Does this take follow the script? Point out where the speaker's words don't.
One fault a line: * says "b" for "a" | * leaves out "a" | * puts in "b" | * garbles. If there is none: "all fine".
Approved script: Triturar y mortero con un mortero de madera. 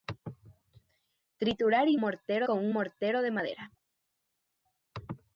all fine